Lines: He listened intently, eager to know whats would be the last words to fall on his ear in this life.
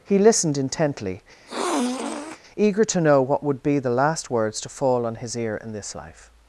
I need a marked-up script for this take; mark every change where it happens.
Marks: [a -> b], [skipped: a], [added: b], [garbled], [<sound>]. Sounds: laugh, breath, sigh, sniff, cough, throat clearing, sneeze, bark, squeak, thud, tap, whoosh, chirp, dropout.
He listened intently, [sniff] eager to know [whats -> what] would be the last words to fall on his ear in this life.